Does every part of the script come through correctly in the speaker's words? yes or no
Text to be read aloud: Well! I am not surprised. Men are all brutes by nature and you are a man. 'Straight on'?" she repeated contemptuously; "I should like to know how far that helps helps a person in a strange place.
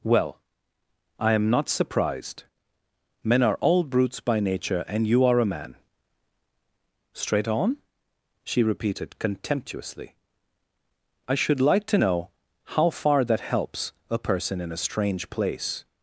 no